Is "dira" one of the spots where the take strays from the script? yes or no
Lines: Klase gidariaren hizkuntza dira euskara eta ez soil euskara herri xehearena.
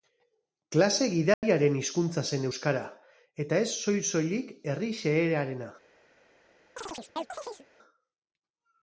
yes